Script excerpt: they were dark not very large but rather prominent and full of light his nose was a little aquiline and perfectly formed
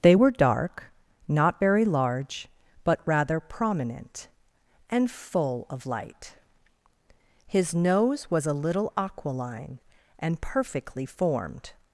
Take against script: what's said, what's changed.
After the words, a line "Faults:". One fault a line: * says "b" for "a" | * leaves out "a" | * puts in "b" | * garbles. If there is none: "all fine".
they were dark not very large but rather prominent and full of light his nose was a little aquiline and perfectly formed
Faults:
all fine